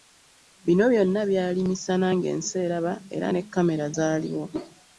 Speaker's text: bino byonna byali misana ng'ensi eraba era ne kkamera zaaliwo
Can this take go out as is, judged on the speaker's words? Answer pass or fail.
pass